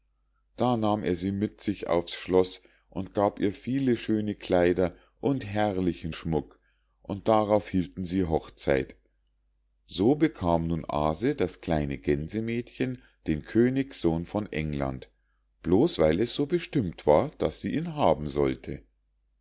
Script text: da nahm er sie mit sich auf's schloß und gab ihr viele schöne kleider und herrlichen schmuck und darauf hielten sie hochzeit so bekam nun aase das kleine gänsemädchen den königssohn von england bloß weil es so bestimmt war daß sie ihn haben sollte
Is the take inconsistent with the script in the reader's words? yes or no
no